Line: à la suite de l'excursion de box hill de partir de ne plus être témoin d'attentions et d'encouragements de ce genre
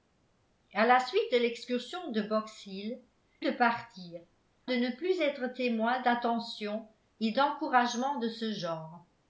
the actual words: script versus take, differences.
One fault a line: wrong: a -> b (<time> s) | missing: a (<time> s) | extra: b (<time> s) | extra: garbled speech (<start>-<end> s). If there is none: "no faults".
no faults